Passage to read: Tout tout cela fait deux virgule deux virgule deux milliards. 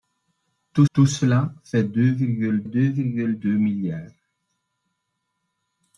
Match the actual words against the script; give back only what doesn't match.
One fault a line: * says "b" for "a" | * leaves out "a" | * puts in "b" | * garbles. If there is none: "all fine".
all fine